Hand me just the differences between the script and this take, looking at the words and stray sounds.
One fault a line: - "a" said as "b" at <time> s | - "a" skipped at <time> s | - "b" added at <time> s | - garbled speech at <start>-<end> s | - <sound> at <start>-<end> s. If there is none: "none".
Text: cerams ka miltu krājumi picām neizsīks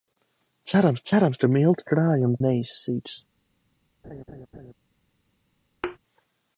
- "cerams" added at 1.1 s
- "picām" skipped at 2.4 s
- laugh at 4.0-4.7 s
- thud at 5.8-6.0 s